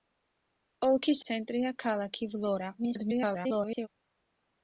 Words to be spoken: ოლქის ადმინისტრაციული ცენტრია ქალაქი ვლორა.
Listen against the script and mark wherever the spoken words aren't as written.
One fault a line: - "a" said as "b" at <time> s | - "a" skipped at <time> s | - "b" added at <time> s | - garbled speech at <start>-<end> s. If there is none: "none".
- "ადმინისტრაციული" skipped at 1.2 s
- garbled speech at 2.8-3.9 s